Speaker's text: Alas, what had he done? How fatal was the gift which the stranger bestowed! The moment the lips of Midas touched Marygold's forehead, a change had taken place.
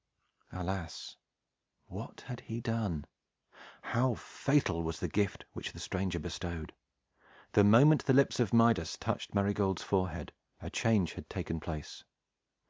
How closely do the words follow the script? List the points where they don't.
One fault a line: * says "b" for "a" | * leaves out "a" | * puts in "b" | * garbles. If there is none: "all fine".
all fine